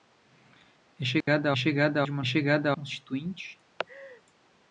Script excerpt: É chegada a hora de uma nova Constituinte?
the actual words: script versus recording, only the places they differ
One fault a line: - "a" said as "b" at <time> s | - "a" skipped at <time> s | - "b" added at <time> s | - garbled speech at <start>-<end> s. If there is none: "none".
- "hora" said as "chegada" at 1.6 s
- "nova" said as "chegada" at 2.3 s